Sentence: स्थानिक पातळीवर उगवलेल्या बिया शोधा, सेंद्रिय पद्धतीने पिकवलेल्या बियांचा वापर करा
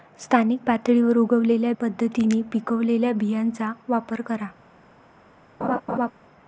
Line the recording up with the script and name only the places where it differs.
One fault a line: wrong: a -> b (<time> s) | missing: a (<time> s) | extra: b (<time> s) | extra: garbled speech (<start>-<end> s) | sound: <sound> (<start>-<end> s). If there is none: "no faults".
missing: बिया शोधा सेंद्रिय (1.7 s)
sound: laugh (5.6-6.1 s)